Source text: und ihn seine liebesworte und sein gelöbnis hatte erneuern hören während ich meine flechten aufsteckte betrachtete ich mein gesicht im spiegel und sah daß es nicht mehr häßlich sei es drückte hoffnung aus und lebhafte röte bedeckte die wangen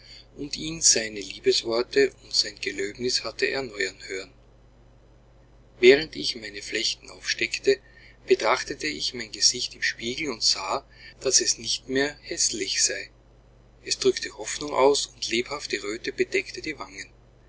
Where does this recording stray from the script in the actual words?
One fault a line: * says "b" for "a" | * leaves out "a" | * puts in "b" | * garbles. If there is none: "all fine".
all fine